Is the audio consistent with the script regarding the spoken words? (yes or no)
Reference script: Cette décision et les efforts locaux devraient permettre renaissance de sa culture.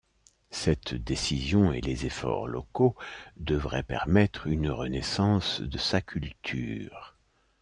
no